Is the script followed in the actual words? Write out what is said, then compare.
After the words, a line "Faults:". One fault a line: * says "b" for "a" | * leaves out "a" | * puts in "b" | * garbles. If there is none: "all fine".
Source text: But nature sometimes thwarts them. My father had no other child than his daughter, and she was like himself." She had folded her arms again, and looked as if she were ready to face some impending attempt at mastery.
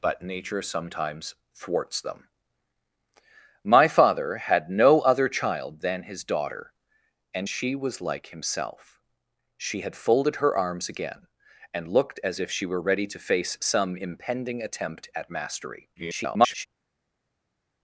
But nature sometimes thwarts them. My father had no other child than his daughter, and she was like himself." She had folded her arms again, and looked as if she were ready to face some impending attempt at mastery. [garbled]
Faults:
* garbles